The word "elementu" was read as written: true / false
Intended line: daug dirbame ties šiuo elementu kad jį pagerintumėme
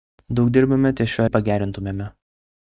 false